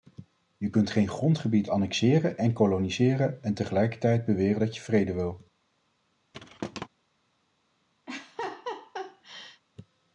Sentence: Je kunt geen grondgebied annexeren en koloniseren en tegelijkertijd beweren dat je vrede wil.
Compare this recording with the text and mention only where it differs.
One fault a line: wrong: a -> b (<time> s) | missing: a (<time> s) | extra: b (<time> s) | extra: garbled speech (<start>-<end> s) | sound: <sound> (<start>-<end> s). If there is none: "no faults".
sound: thud (6.3-6.9 s)
sound: laugh (8.1-9.6 s)